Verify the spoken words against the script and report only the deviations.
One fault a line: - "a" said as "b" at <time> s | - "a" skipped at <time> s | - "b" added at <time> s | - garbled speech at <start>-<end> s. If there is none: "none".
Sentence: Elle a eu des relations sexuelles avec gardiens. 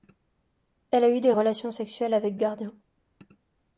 none